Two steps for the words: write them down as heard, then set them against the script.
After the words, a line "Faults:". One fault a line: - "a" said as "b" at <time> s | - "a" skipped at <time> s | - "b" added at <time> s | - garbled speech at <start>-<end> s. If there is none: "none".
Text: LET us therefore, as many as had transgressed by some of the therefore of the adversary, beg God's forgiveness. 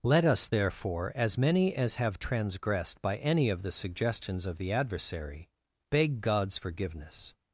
LET us therefore, as many as have transgressed by any of the suggestions of the adversary, beg God's forgiveness.
Faults:
- "had" said as "have" at 2.0 s
- "some" said as "any" at 3.2 s
- "therefore" said as "suggestions" at 3.7 s